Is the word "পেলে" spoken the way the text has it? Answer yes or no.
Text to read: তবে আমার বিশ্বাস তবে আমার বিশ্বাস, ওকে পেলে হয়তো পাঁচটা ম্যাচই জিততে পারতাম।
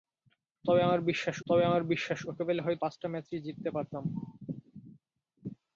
yes